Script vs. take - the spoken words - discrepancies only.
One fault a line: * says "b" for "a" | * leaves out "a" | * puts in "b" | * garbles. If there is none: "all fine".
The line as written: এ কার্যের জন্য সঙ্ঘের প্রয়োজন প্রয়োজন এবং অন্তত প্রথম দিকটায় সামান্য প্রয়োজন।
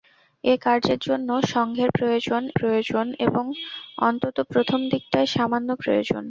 all fine